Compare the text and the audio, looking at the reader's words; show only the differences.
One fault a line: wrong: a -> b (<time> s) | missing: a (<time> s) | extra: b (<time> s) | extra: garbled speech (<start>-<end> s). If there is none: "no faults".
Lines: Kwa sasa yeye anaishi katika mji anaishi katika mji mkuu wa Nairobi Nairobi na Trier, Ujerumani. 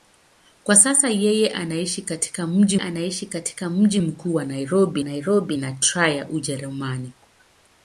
no faults